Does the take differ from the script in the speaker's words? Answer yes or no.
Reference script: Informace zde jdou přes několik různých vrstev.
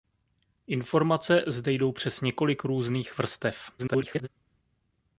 yes